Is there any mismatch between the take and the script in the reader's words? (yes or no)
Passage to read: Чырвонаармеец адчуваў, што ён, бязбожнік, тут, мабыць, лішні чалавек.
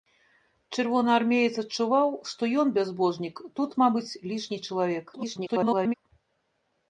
yes